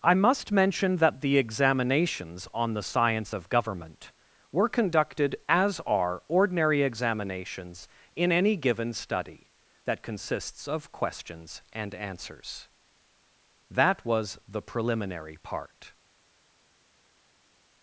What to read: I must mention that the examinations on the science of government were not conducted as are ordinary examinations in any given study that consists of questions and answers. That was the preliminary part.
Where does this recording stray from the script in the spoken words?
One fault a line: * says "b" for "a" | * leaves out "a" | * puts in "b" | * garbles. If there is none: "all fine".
* leaves out "not"